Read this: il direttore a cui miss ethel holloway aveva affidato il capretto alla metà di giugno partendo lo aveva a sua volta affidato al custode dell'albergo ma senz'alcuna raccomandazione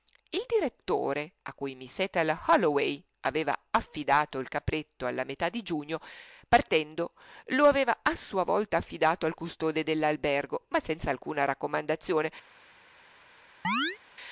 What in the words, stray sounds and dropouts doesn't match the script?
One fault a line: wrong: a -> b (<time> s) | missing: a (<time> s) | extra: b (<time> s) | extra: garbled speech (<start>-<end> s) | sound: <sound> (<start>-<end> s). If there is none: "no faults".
sound: chirp (13.6-14.0 s)